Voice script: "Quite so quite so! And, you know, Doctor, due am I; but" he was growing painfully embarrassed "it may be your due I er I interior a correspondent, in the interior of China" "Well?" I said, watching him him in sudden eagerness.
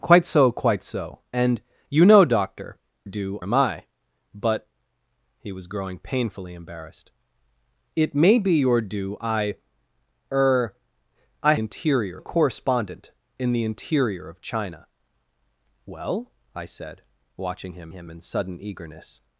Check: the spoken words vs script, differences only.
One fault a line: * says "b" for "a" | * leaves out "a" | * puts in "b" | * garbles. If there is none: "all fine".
all fine